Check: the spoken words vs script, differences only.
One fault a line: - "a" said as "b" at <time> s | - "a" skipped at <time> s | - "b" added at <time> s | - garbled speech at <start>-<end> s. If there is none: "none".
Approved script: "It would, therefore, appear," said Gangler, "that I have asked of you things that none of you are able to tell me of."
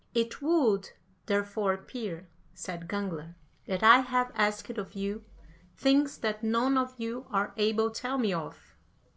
- "to" skipped at 7.9 s